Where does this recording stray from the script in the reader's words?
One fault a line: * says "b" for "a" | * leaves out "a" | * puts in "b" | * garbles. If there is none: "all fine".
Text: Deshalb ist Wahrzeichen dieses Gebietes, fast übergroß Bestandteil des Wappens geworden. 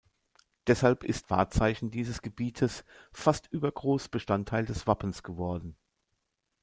all fine